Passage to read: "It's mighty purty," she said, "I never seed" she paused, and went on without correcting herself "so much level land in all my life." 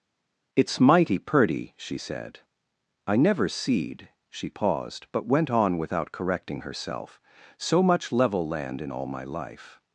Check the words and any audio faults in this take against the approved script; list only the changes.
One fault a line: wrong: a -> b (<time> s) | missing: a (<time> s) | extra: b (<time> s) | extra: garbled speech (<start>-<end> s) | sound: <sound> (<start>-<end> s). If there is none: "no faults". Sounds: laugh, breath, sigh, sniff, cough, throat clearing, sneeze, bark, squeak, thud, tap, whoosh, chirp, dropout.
wrong: and -> but (5.1 s)